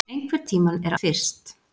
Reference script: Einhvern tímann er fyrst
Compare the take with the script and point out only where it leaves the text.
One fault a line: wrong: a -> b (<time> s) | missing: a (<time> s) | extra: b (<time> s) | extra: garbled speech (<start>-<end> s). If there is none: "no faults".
no faults